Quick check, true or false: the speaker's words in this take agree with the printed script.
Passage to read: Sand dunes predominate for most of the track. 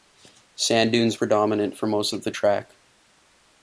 true